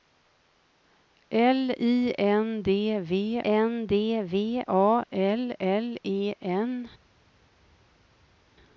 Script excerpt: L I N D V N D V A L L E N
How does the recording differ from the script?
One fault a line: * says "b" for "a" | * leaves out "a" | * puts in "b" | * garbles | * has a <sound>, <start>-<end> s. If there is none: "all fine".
all fine